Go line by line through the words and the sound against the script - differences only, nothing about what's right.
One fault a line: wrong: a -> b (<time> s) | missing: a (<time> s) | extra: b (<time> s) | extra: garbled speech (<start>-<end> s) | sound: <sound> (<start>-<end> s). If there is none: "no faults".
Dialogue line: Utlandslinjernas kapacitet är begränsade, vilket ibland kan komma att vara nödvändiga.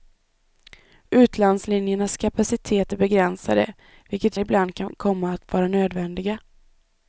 no faults